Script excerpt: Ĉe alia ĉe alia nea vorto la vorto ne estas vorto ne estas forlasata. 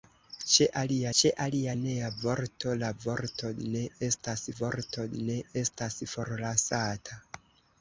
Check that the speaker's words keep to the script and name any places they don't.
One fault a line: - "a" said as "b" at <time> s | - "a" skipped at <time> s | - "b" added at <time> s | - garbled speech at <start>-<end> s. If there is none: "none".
none